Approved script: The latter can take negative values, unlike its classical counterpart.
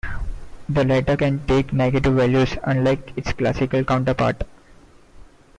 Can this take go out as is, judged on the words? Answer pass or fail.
pass